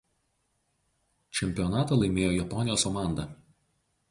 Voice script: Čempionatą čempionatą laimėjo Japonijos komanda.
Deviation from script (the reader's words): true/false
true